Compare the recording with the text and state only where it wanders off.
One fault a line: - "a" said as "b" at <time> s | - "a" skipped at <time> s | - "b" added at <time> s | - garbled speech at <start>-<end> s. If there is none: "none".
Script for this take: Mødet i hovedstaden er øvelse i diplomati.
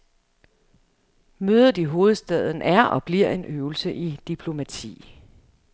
- "og bliver en" added at 2.8 s